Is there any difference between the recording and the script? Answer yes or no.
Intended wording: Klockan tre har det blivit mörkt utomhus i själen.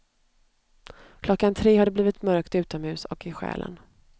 yes